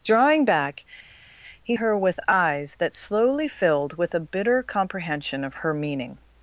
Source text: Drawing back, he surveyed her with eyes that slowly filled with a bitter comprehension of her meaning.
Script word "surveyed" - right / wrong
wrong